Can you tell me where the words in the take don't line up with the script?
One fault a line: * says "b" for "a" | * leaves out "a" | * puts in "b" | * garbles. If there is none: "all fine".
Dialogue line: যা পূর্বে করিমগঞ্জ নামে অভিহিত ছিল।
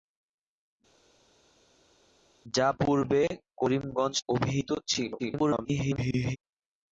* leaves out "নামে"
* garbles